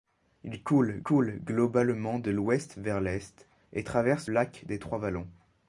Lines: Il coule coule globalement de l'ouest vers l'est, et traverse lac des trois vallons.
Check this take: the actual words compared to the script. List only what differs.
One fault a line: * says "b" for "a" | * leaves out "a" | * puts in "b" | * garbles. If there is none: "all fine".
all fine